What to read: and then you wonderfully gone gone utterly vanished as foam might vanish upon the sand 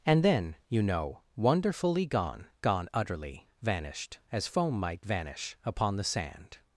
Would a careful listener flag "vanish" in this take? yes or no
no